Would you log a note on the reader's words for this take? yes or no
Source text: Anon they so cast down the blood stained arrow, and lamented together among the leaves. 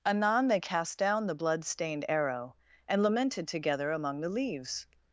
yes